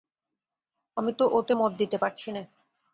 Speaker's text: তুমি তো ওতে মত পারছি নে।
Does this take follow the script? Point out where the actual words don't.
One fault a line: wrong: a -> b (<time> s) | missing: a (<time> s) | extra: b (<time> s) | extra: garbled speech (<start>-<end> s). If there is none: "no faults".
wrong: তুমি -> আমি (1.0 s)
extra: দিতে (1.7 s)